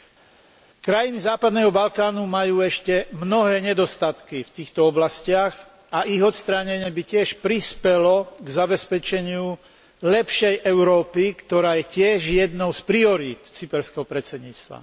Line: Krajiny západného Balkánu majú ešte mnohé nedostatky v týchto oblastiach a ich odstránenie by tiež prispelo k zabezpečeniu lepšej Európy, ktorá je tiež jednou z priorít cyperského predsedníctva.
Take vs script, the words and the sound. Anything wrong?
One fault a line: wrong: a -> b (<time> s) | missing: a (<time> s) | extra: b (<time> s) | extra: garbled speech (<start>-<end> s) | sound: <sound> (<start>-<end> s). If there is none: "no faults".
no faults